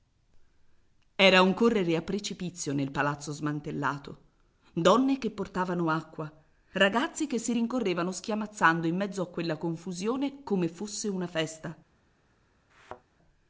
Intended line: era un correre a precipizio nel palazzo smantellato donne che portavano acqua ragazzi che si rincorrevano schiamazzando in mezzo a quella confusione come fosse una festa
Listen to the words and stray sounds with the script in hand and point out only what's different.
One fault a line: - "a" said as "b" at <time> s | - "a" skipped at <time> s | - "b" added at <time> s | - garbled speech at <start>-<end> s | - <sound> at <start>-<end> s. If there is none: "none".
- thud at 12.7-13.0 s